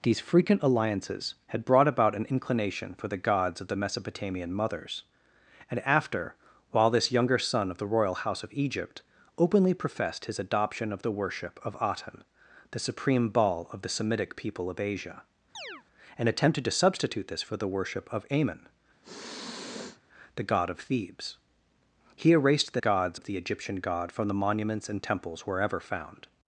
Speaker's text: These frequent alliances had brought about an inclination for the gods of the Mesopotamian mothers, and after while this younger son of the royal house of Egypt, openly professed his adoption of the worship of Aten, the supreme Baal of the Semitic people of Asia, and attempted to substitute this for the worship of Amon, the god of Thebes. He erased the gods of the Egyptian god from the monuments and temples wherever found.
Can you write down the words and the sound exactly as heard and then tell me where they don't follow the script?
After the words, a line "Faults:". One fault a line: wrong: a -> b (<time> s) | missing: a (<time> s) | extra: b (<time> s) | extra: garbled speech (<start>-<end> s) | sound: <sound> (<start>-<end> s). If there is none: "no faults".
These frequent alliances had brought about an inclination for the gods of the Mesopotamian mothers, and after while this younger son of the royal house of Egypt, openly professed his adoption of the worship of Aten, the supreme Baal of the Semitic people of Asia, and attempted to substitute this for the worship of Amon, the god of Thebes. He erased the gods of the Egyptian god from the monuments and temples wherever found.
Faults:
sound: chirp (15.5-15.8 s)
sound: sniff (19.0-20.0 s)